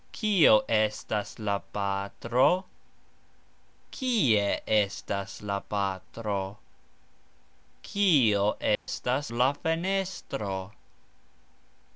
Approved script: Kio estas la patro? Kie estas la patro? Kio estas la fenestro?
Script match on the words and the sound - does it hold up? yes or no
no